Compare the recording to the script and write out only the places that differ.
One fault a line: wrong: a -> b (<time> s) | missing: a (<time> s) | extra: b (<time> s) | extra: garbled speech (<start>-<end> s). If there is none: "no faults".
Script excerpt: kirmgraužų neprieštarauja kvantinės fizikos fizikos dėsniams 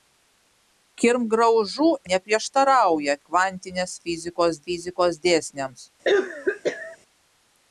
no faults